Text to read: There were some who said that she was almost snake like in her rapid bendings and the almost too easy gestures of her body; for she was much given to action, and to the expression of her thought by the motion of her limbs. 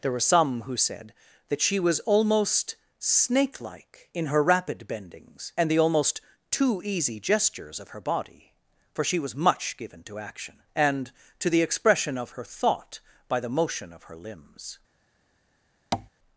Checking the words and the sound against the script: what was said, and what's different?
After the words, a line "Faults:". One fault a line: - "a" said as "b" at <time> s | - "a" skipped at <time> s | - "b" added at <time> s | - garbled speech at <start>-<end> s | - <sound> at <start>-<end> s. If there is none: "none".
There were some who said that she was almost snake like in her rapid bendings and the almost too easy gestures of her body; for she was much given to action, and to the expression of her thought by the motion of her limbs.
Faults:
- tap at 15.9-16.1 s